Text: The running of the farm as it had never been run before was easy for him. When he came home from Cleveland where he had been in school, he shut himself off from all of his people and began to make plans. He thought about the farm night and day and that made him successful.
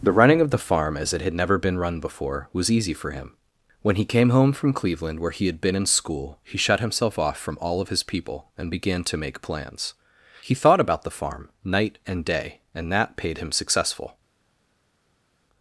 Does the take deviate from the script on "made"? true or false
true